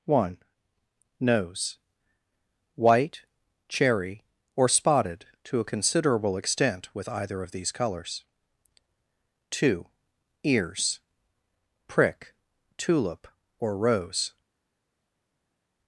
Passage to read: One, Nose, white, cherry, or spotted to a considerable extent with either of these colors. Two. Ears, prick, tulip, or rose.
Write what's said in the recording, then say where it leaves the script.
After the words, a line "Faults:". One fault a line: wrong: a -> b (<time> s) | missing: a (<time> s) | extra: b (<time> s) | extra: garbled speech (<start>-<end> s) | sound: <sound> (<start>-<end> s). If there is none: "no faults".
One, Nose, white, cherry, or spotted to a considerable extent with either of these colors. Two. Ears, prick, tulip, or rose.
Faults:
no faults